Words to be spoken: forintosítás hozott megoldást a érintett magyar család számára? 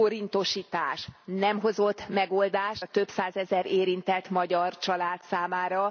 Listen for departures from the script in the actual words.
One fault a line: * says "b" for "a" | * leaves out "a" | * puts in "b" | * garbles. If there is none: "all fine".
* puts in "nem"
* puts in "több százezer"